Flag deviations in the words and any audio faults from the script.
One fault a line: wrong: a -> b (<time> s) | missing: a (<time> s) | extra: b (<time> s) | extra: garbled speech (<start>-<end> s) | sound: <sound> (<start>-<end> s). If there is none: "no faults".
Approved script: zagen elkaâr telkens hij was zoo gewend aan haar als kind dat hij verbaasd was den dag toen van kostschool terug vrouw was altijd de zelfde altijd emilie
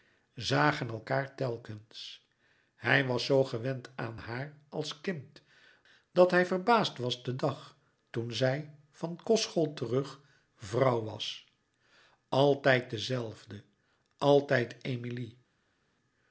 extra: zij (8.3 s)